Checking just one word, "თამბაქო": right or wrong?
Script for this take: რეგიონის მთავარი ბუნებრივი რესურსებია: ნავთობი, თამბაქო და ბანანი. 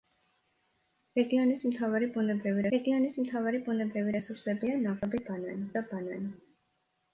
wrong